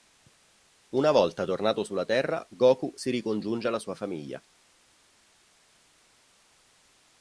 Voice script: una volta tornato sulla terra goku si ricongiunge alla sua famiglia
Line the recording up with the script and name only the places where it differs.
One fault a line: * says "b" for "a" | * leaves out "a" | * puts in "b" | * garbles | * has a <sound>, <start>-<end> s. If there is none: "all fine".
all fine